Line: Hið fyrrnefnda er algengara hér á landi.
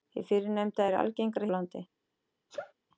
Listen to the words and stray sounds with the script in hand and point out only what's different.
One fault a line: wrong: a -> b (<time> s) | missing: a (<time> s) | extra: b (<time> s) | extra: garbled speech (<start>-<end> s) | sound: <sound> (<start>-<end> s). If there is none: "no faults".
missing: hér (1.5 s)
sound: sneeze (2.5-2.7 s)